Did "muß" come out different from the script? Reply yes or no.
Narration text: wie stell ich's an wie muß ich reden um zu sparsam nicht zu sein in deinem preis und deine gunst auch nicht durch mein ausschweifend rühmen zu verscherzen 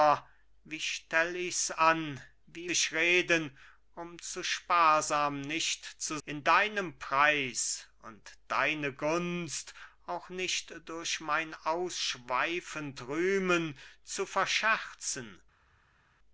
yes